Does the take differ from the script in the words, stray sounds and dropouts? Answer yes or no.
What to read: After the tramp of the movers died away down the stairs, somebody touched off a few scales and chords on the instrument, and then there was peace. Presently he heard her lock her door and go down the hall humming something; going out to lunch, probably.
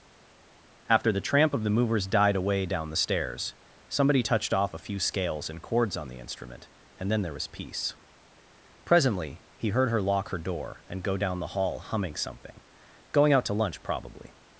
no